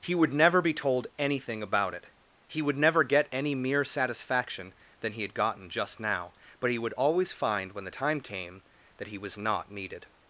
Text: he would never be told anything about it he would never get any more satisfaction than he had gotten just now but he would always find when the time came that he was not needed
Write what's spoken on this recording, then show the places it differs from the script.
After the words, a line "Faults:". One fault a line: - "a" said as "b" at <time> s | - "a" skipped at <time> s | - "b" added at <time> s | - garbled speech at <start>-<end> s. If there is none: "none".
he would never be told anything about it he would never get any mere satisfaction than he had gotten just now but he would always find when the time came that he was not needed
Faults:
- "more" said as "mere" at 3.5 s